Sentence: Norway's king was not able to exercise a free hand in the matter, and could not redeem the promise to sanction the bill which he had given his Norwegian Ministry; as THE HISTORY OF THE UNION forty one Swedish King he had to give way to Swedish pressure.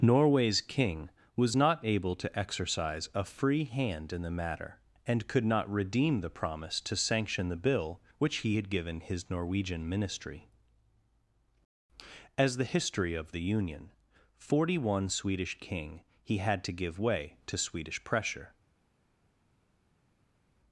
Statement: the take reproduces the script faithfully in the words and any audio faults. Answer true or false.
true